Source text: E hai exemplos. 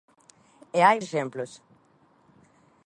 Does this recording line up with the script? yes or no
yes